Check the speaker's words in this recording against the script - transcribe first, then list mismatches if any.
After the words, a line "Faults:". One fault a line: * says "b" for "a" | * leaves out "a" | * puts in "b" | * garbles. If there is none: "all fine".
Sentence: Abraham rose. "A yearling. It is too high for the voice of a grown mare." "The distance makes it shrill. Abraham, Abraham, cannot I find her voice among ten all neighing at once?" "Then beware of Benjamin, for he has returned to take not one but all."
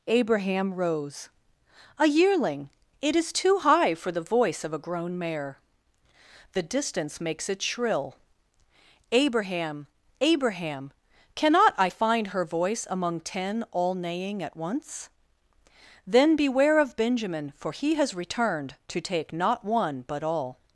Abraham rose. "A yearling. It is too high for the voice of a grown mare." "The distance makes it shrill. Abraham, Abraham, cannot I find her voice among ten all neighing at once?" "Then beware of Benjamin, for he has returned to take not one but all."
Faults:
all fine